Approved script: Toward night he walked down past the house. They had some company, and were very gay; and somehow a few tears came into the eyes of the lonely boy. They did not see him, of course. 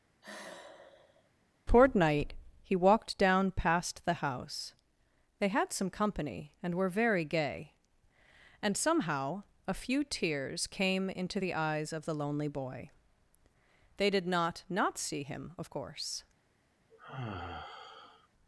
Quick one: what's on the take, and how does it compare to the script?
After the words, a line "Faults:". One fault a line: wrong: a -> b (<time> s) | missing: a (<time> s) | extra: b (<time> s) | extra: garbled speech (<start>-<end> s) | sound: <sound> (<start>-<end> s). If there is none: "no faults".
Toward night he walked down past the house. They had some company, and were very gay; and somehow a few tears came into the eyes of the lonely boy. They did not not see him, of course.
Faults:
sound: sigh (0.2-1.3 s)
extra: not (14.7 s)
sound: sigh (16.9-18.3 s)